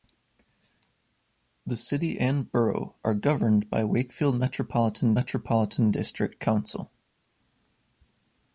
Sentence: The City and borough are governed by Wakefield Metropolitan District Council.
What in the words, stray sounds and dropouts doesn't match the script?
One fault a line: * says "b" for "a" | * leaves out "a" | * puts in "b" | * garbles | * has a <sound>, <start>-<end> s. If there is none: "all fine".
* puts in "Metropolitan"